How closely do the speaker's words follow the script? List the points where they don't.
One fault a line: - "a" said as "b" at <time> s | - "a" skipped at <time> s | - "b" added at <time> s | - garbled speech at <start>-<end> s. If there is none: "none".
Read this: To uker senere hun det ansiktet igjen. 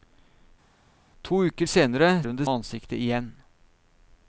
none